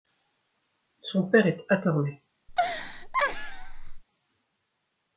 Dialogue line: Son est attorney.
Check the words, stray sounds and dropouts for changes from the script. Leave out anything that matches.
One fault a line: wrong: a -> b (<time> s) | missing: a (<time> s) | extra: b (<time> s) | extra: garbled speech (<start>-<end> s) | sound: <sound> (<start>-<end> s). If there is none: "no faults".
extra: père (1.2 s)
sound: laugh (2.5-4.0 s)